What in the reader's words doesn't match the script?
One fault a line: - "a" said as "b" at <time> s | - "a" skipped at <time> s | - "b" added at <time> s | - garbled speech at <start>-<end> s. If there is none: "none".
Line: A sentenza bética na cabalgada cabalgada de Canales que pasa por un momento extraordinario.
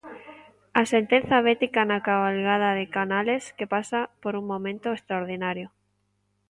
- "cabalgada" skipped at 2.7 s